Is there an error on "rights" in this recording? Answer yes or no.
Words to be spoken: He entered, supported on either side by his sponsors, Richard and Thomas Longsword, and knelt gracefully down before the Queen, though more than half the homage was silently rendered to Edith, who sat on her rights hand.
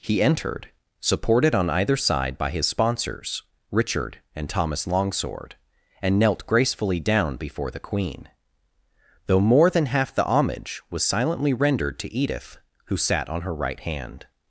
yes